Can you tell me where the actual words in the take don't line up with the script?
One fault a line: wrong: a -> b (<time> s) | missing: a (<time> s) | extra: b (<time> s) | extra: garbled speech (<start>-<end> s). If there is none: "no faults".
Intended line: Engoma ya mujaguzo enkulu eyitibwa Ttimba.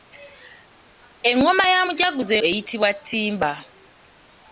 missing: enkulu (2.3 s)